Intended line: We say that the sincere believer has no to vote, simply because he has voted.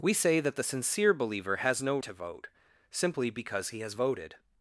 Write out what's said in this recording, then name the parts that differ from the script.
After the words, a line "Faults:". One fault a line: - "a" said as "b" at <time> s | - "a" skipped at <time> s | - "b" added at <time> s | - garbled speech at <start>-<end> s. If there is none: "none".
We say that the sincere believer has no to vote, simply because he has voted.
Faults:
none